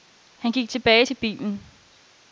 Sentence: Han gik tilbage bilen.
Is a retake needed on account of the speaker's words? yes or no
yes